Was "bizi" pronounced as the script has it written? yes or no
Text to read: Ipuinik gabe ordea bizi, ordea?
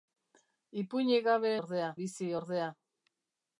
yes